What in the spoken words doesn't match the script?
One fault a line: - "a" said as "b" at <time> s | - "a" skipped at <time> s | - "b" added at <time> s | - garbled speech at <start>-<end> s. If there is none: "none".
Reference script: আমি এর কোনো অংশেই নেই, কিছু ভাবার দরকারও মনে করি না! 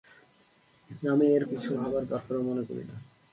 - "কোনো অংশেই নেই" skipped at 1.4 s